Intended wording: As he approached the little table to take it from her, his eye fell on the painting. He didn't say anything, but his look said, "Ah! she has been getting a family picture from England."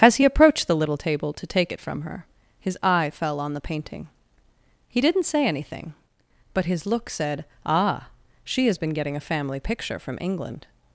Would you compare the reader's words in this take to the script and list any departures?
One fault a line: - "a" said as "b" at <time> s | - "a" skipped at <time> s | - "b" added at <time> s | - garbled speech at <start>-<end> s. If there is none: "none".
none